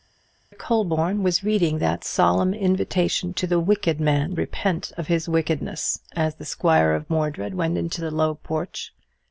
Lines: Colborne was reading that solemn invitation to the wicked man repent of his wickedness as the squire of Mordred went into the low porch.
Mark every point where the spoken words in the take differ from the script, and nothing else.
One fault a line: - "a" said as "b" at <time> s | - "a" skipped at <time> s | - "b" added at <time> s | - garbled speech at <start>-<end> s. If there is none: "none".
none